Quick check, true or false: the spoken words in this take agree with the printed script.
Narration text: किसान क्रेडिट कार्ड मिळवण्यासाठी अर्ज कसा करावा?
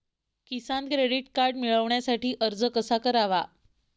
true